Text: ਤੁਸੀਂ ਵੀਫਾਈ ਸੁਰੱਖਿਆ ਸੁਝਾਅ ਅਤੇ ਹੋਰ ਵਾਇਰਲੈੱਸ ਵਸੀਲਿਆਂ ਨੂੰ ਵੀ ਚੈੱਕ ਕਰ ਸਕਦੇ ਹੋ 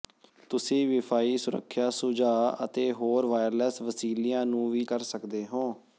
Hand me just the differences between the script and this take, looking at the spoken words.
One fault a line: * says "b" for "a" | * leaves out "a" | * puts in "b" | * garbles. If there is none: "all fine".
* leaves out "ਚੈੱਕ"